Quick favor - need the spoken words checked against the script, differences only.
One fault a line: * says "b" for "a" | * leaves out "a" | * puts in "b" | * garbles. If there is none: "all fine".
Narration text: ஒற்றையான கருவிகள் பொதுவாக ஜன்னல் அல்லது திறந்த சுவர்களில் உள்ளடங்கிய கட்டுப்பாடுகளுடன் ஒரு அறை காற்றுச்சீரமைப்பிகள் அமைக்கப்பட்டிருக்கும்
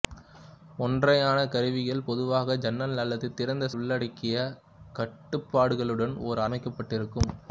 * leaves out "சுவர்களில்"
* leaves out "அறை காற்றுச்சீரமைப்பிகள்"